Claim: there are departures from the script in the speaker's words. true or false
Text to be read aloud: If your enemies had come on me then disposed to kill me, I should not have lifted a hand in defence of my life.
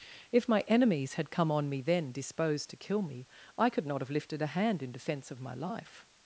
true